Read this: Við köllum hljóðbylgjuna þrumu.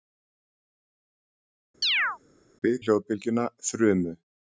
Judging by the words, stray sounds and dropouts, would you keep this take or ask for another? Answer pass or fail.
fail